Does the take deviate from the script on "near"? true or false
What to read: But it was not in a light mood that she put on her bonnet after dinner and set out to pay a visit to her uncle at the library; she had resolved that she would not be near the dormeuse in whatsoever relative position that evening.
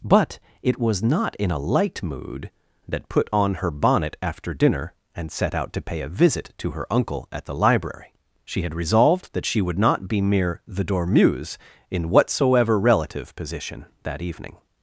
true